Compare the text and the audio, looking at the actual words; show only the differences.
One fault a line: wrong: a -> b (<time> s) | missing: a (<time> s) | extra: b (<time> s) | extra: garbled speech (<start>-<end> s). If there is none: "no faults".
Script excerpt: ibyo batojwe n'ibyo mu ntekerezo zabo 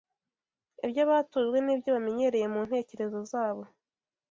extra: bamenyereye (1.9 s)